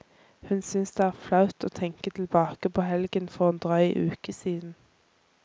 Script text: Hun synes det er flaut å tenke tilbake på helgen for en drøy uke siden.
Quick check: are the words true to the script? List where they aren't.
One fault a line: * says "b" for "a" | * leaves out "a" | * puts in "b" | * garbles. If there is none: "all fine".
all fine